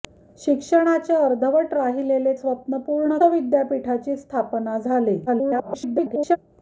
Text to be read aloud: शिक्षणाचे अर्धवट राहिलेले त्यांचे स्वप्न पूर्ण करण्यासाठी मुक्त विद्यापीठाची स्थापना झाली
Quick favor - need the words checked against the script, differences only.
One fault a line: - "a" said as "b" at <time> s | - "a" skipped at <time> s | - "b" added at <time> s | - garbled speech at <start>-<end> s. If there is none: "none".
- "त्यांचे" skipped at 2.3 s
- "करण्यासाठी मुक्त" skipped at 3.2 s
- garbled speech at 5.3-6.4 s